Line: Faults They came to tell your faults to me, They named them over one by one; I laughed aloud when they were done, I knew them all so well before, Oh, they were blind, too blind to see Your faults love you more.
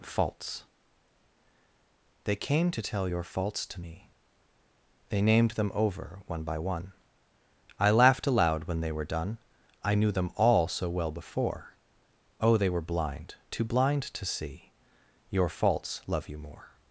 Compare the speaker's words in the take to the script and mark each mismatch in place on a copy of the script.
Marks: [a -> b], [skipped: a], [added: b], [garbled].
Faults They came to tell your faults to me, They named them over one by one; I laughed aloud when they were done, I knew them all so well before, Oh, they were blind, too blind to see Your faults love you more.